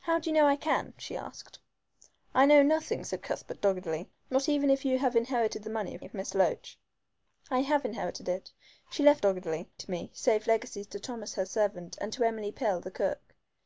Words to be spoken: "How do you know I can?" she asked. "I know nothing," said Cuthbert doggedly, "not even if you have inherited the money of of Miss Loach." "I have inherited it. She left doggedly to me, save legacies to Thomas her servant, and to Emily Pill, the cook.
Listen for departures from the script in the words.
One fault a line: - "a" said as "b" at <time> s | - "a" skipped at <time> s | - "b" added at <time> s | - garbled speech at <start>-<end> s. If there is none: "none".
none